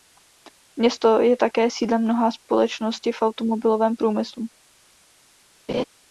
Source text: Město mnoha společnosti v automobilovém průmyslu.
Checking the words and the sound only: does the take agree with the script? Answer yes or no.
no